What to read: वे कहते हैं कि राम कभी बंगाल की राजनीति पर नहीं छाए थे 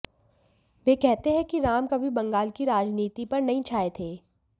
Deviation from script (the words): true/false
false